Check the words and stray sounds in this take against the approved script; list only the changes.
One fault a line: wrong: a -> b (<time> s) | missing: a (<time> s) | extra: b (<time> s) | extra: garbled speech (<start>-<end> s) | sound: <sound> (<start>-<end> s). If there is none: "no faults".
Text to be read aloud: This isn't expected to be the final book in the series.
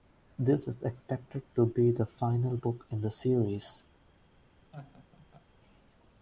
wrong: isn't -> is (0.7 s)
sound: laugh (4.7-5.5 s)